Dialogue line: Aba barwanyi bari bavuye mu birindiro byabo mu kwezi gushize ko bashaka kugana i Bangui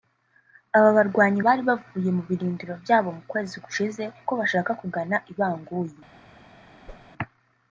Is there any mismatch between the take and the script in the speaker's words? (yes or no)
no